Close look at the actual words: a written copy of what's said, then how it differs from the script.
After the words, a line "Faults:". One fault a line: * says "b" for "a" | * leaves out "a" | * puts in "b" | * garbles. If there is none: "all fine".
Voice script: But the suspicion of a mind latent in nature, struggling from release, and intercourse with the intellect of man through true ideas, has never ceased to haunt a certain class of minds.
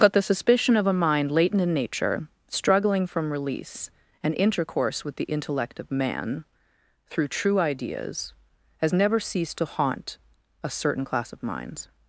But the suspicion of a mind latent in nature, struggling from release, and intercourse with the intellect of man through true ideas, has never ceased to haunt a certain class of minds.
Faults:
all fine